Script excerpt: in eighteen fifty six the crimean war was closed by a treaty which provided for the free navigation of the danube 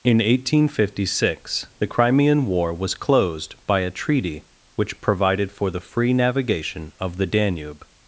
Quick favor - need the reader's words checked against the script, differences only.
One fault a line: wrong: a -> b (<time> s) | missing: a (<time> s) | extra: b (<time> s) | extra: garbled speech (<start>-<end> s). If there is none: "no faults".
no faults